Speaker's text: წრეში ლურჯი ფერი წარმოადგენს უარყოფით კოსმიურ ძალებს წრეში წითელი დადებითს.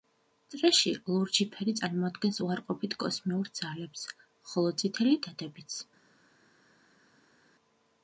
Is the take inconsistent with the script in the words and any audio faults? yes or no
yes